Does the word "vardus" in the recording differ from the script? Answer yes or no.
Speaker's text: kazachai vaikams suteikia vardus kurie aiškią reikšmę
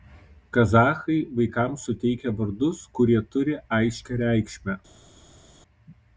no